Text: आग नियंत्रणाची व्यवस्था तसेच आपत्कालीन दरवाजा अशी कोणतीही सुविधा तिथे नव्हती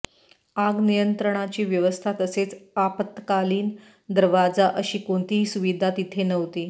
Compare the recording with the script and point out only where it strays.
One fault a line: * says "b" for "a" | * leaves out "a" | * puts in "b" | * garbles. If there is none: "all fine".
all fine